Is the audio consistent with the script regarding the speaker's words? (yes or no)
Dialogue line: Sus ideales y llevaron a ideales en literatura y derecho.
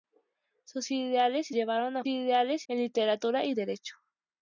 yes